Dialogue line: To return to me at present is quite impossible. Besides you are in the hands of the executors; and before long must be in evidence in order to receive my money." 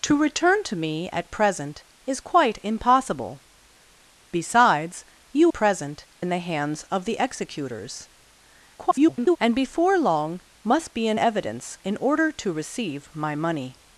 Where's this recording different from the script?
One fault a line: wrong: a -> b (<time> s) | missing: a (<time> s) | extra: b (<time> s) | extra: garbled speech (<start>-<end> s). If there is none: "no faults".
wrong: are -> present (5.5 s)
extra: garbled speech (8.8-9.4 s)